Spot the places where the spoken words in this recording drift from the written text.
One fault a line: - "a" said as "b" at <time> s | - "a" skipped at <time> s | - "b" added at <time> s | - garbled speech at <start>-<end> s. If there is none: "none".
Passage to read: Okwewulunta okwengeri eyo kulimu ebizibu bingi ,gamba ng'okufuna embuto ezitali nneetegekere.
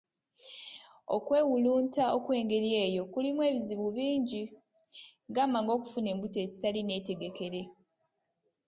none